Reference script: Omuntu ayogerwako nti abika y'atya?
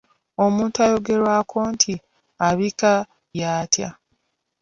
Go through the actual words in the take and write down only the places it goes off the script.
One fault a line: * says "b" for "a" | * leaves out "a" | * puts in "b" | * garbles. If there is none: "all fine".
all fine